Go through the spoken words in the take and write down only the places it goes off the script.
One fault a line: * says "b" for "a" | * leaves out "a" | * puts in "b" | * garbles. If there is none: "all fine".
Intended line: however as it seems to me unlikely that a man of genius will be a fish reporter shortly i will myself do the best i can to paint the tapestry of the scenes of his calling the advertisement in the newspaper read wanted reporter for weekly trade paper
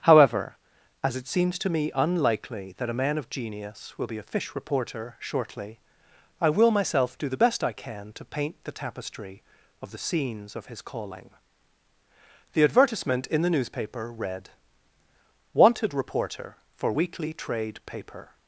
all fine